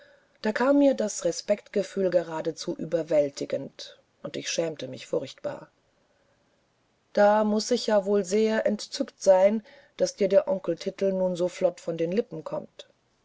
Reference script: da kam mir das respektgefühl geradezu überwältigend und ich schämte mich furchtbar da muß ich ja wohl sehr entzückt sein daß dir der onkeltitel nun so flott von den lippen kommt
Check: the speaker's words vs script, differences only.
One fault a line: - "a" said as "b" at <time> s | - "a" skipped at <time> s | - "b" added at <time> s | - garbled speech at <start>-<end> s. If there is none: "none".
none